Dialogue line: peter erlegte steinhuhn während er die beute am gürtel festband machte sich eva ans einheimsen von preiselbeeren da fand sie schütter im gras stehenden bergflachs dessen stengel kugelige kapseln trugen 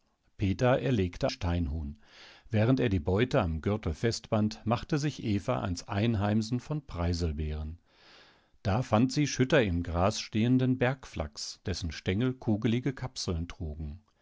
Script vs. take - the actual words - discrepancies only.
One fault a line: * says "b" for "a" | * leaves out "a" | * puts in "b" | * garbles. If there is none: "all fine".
all fine